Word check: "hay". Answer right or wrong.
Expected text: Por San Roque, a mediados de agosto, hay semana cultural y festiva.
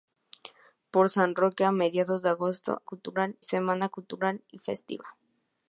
wrong